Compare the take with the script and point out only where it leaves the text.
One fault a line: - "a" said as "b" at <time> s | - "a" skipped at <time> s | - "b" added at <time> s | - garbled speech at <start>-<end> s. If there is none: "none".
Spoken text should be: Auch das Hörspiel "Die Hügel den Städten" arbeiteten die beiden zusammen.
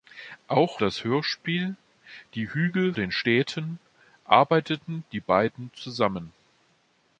none